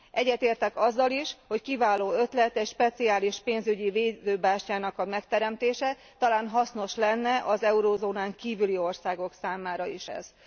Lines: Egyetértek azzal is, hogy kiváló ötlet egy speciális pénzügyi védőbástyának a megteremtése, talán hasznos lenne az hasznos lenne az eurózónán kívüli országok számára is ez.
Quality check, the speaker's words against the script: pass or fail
fail